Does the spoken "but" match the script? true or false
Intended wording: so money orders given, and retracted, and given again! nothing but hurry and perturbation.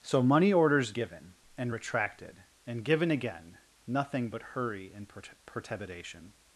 true